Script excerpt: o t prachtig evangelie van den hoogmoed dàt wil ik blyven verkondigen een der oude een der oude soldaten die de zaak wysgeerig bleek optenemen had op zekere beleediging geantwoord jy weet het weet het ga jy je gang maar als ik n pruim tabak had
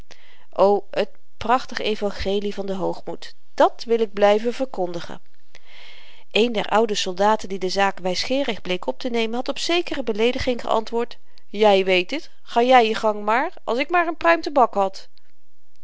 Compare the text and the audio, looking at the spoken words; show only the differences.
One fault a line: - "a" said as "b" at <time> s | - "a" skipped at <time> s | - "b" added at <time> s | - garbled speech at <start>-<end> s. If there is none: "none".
- "een der oude" skipped at 7.0 s
- "weet het" skipped at 12.3 s
- "maar" added at 13.9 s